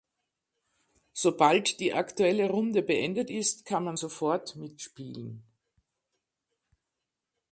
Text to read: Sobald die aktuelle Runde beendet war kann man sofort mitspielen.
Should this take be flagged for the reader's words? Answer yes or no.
yes